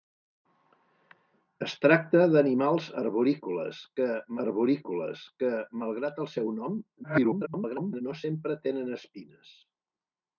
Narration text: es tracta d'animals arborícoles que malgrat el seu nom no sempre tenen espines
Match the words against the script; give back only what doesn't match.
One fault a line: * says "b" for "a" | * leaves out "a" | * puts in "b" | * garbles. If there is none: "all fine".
* puts in "arborícoles que"
* garbles